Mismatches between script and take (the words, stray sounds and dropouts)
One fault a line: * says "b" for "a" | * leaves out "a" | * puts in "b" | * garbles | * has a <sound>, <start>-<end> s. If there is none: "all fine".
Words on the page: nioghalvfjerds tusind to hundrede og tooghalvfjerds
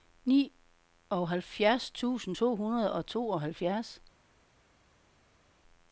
all fine